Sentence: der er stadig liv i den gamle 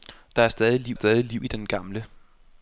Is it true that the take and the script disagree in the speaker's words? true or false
true